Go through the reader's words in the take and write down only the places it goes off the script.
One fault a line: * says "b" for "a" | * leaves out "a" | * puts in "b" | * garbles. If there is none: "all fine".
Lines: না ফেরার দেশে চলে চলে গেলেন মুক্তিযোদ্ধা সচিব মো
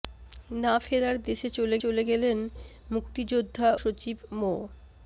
all fine